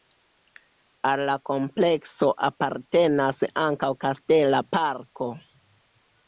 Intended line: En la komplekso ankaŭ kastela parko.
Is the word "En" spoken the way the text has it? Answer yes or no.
no